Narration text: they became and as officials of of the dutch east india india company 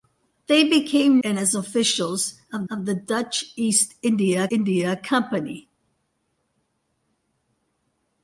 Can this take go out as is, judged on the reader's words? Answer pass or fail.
pass